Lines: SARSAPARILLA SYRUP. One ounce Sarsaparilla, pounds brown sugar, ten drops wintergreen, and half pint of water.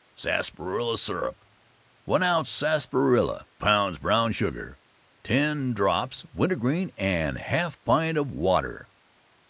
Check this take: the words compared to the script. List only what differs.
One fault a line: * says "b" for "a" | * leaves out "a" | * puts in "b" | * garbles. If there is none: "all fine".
all fine